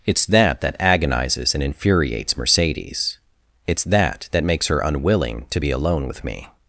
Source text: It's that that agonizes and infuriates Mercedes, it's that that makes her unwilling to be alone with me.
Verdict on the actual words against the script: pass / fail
pass